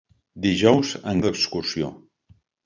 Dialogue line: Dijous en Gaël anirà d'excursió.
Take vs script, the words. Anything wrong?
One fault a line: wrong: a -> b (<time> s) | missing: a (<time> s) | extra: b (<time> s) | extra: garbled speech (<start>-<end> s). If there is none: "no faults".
missing: Gaël anirà (1.2 s)